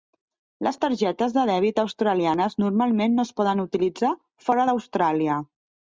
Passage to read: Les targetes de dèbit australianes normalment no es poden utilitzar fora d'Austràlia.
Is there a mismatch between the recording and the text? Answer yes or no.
no